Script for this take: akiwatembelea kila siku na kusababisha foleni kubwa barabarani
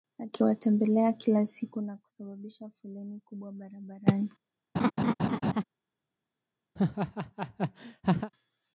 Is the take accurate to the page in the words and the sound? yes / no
no